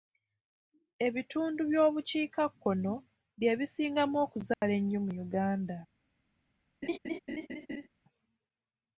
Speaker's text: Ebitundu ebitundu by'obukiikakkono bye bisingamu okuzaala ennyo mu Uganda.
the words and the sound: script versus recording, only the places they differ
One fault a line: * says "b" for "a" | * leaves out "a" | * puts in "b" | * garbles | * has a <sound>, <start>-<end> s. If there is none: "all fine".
* leaves out "ebitundu"
* has a dropout, 4.5-4.6 s
* has a laugh, 6.8-7.9 s